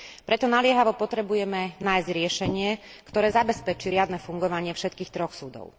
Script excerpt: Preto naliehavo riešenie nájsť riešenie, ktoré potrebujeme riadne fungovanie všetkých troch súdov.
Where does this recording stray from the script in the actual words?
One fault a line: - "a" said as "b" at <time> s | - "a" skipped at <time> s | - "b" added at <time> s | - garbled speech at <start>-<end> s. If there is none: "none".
- "riešenie" said as "potrebujeme" at 0.9 s
- "potrebujeme" said as "zabezpečí" at 3.3 s